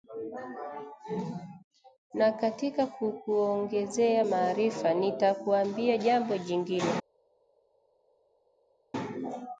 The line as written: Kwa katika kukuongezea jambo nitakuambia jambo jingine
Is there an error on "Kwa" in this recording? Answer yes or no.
yes